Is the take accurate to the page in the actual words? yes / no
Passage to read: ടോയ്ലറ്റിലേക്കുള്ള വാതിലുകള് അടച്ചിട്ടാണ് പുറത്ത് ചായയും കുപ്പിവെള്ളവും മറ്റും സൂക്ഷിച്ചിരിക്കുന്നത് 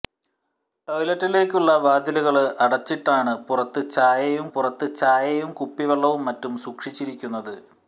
no